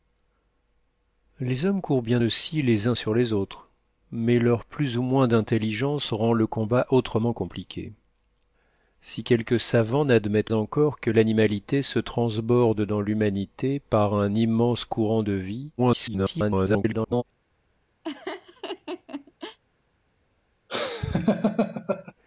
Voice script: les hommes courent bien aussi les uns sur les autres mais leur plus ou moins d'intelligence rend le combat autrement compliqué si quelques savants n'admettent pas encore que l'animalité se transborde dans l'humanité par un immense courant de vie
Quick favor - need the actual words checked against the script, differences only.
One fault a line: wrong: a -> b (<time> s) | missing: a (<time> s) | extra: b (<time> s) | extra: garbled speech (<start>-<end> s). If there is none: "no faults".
missing: pas (10.5 s)
extra: garbled speech (15.8-17.2 s)